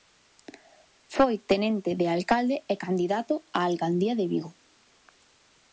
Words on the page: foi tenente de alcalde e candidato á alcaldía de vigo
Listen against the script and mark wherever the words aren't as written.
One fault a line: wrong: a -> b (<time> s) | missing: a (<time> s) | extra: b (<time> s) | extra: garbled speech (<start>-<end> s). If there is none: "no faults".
no faults